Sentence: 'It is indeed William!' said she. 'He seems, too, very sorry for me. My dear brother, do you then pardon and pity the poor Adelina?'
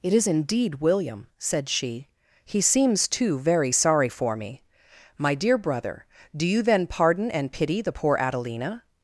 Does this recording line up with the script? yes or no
yes